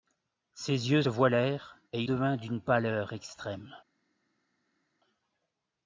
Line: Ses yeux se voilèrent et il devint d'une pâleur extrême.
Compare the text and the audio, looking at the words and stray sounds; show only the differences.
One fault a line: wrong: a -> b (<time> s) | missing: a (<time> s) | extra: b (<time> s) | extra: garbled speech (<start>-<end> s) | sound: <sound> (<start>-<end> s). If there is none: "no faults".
missing: se (1.0 s)
missing: il (2.0 s)